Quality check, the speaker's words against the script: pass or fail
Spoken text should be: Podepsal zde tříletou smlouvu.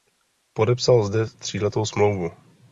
pass